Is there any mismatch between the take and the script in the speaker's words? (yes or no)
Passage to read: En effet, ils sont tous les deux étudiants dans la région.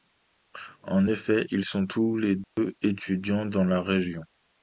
no